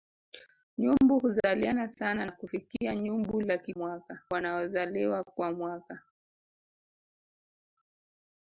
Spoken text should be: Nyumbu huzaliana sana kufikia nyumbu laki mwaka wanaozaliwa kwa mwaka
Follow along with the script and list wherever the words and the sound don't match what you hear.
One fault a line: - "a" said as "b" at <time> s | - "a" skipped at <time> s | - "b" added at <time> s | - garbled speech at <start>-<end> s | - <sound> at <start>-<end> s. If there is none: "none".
none